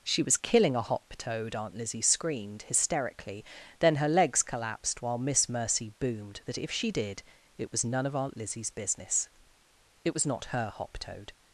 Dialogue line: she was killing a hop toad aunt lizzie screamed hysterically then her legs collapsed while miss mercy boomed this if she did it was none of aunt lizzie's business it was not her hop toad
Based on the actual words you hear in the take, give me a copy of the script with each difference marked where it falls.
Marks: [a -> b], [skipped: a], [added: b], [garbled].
she was killing a hop toad aunt lizzie screamed hysterically then her legs collapsed while miss mercy boomed [this -> that] if she did it was none of aunt lizzie's business it was not her hop toad